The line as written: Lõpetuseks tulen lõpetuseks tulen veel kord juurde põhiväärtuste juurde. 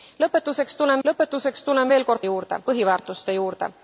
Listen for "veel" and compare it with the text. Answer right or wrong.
right